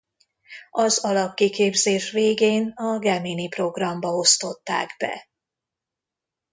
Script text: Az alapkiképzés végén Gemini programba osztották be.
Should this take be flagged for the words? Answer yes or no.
yes